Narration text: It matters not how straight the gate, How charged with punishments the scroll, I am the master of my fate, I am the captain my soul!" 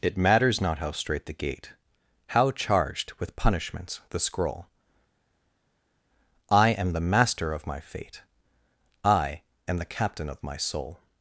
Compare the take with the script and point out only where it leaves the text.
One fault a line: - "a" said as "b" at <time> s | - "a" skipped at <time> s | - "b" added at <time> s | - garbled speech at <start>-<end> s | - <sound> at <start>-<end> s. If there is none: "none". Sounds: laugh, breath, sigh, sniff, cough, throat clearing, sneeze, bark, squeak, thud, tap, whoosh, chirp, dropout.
- "of" added at 10.3 s